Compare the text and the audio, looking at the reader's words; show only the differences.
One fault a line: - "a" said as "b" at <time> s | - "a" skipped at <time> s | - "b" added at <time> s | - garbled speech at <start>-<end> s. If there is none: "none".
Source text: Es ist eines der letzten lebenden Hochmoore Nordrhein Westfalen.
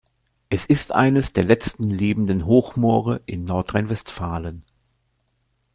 - "in" added at 3.3 s